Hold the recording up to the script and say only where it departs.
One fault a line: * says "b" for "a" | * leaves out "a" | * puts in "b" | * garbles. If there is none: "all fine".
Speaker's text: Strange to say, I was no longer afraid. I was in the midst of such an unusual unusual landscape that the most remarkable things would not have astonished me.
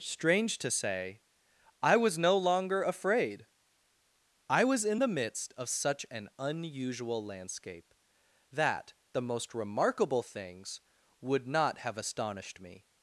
* leaves out "unusual"